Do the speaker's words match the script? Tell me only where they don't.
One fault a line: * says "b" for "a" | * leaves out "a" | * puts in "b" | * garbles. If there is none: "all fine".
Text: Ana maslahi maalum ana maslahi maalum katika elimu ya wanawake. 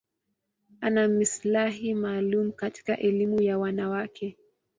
* leaves out "ana maslahi maalum"